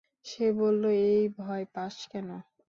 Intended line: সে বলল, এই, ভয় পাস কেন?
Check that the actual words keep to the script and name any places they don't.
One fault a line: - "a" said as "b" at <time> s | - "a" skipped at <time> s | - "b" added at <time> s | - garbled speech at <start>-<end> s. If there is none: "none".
none